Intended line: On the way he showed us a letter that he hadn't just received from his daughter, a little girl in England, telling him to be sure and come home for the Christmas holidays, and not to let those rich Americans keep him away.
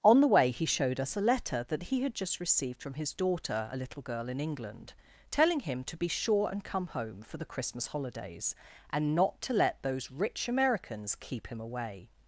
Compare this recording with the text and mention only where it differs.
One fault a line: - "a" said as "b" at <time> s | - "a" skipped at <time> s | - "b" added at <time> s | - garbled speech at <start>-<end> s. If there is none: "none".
- "hadn't" said as "had" at 2.0 s